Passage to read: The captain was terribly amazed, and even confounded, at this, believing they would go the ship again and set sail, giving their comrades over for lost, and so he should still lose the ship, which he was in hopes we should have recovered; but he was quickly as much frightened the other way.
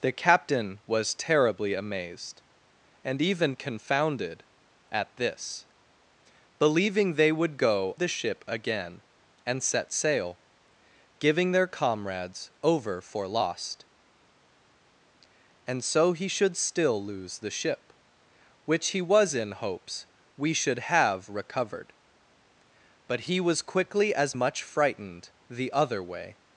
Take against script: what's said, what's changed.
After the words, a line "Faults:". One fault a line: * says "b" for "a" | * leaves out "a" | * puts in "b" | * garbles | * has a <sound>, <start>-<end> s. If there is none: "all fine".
The captain was terribly amazed, and even confounded, at this, believing they would go the ship again and set sail, giving their comrades over for lost, and so he should still lose the ship, which he was in hopes we should have recovered; but he was quickly as much frightened the other way.
Faults:
all fine